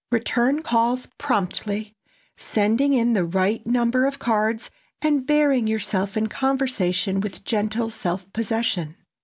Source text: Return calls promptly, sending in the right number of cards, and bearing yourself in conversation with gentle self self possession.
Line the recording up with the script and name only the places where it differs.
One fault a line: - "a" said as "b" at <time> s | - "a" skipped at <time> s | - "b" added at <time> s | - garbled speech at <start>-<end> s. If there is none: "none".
- "self" skipped at 8.3 s